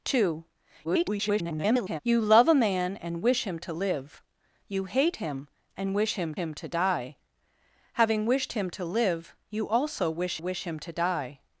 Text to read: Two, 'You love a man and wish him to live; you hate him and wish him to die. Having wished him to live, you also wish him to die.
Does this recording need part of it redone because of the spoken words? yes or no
yes